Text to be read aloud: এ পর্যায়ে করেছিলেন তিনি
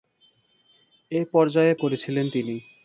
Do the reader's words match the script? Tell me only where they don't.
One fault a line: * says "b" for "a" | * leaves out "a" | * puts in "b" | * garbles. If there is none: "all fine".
all fine